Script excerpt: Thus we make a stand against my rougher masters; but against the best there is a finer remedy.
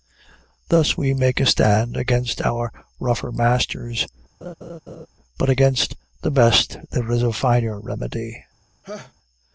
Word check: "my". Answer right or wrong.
wrong